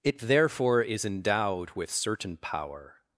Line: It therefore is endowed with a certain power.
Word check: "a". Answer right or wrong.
wrong